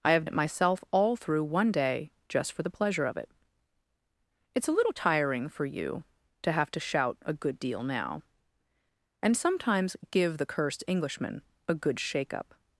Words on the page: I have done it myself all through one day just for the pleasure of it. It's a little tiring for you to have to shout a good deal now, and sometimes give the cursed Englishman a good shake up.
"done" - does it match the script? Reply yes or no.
no